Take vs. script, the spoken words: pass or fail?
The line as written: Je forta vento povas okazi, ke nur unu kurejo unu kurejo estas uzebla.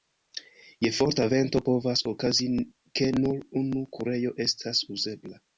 fail